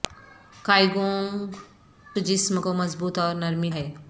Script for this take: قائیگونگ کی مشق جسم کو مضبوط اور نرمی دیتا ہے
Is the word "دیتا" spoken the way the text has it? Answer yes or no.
no